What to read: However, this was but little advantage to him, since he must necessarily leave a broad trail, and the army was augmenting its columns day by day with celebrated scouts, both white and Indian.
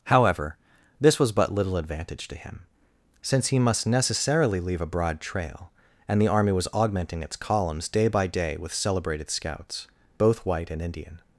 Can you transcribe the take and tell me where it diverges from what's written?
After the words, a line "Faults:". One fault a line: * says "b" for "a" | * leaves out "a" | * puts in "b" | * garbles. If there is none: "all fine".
However, this was but little advantage to him, since he must necessarily leave a broad trail, and the army was augmenting its columns day by day with celebrated scouts, both white and Indian.
Faults:
all fine